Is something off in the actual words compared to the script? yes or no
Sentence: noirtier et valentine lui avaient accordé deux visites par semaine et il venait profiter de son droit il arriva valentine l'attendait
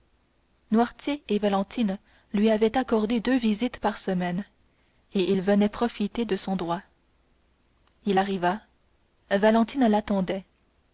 no